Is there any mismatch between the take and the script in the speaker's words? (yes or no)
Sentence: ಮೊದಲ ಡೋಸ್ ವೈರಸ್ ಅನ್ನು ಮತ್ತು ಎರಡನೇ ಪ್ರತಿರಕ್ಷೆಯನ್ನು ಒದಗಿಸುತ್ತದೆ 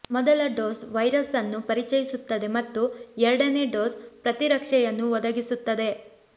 yes